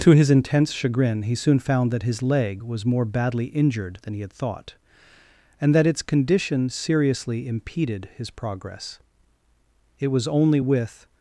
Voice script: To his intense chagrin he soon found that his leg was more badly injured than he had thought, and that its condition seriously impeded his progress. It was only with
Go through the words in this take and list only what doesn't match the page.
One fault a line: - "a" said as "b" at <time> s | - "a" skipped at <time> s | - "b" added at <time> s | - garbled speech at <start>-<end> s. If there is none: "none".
none